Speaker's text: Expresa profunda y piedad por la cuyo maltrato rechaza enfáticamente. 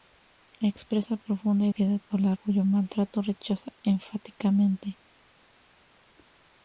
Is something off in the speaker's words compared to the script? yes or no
no